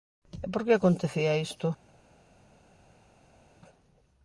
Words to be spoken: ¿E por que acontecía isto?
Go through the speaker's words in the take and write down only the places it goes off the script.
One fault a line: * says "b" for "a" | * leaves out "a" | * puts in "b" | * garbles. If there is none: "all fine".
all fine